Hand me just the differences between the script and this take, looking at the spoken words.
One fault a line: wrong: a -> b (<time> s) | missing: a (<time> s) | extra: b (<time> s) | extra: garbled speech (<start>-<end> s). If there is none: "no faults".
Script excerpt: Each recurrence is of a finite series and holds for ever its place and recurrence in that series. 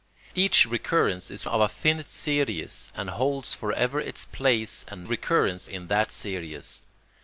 no faults